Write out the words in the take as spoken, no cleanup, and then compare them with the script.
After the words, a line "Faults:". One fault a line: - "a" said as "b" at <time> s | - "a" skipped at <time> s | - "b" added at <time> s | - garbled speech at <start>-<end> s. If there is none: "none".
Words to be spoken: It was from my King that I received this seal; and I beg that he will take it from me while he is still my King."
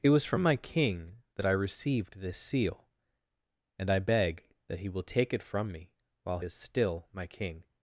It was from my King that I received this seal; and I beg that he will take it from me while is still my King."
Faults:
- "he" skipped at 6.4 s